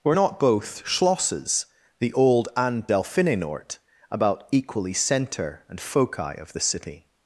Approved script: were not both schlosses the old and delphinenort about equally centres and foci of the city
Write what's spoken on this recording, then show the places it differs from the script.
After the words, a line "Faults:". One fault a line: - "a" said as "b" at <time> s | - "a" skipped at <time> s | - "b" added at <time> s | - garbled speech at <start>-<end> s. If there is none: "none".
were not both schlosses the old and delphinenort about equally centre and foci of the city
Faults:
- "centres" said as "centre" at 4.9 s